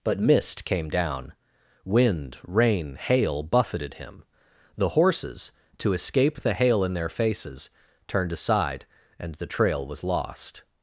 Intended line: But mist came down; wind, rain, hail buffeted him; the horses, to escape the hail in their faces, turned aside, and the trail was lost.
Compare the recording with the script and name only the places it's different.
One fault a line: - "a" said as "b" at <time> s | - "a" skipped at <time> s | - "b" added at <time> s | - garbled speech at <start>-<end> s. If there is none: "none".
none